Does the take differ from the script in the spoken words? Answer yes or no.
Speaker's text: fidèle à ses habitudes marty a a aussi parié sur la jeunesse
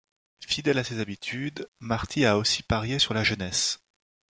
yes